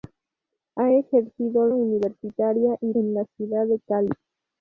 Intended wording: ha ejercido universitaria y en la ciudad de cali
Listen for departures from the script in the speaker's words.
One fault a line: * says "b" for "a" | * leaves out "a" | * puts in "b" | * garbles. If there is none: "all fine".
all fine